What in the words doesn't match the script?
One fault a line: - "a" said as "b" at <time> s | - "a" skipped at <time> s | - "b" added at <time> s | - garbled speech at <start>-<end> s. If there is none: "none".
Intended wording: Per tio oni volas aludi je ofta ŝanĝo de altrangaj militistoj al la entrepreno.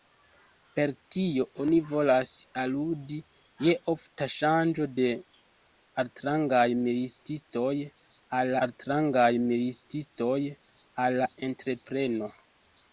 - "altrangaj militistoj al" added at 8.7 s